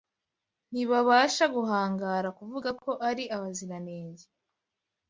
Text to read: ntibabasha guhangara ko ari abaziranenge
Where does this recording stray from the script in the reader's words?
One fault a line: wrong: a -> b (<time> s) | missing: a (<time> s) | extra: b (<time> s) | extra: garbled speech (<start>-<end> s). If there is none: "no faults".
extra: kuvuga (2.4 s)